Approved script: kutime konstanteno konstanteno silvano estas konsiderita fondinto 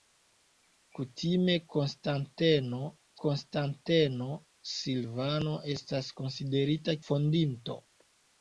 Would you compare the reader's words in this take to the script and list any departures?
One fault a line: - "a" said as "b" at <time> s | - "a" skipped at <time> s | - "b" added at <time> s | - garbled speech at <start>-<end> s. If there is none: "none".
none